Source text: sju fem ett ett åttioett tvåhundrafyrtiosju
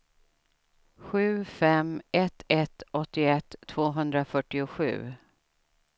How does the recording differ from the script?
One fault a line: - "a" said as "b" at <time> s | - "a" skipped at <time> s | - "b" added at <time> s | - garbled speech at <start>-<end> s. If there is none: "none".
none